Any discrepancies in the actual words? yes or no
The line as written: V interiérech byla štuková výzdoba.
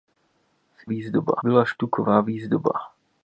yes